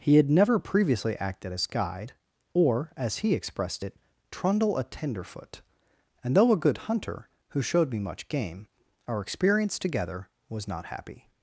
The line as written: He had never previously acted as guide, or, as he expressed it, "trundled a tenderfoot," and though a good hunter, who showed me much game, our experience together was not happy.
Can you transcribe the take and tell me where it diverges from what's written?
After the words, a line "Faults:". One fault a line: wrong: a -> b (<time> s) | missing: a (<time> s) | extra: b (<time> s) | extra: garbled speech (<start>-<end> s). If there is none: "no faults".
He had never previously acted as guide, or, as he expressed it, "trundle a tenderfoot," and though a good hunter, who showed me much game, our experience together was not happy.
Faults:
wrong: trundled -> trundle (4.3 s)